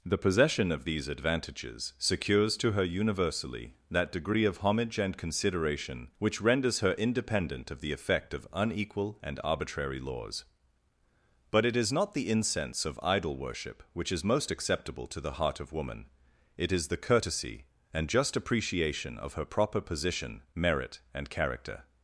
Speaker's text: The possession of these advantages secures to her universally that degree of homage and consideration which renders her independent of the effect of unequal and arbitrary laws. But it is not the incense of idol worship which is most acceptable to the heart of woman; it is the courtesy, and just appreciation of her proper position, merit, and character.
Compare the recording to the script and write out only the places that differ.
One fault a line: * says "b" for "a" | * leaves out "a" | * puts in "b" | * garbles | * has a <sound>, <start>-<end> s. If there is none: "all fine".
all fine